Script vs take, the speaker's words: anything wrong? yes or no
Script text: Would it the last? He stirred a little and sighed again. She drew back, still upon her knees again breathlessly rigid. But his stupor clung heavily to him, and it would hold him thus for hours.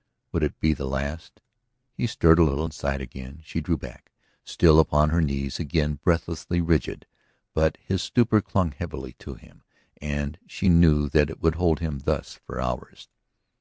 yes